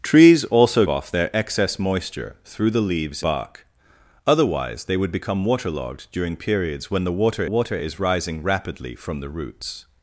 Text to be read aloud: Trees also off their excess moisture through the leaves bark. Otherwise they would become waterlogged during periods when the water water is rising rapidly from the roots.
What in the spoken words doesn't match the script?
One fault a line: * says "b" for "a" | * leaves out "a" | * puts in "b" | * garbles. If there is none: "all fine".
all fine